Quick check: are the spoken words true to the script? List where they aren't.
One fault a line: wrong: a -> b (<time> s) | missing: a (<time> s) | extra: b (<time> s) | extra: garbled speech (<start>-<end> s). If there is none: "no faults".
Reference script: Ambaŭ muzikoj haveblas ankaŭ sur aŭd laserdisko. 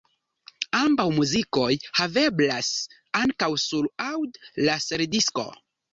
no faults